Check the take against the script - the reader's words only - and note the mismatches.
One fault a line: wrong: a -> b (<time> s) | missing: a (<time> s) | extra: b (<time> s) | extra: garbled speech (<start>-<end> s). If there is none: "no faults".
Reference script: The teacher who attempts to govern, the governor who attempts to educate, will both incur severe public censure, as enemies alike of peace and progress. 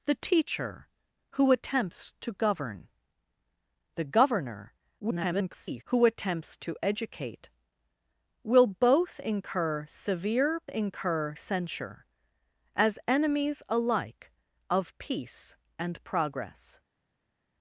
extra: garbled speech (5.0-5.8 s)
wrong: public -> incur (10.7 s)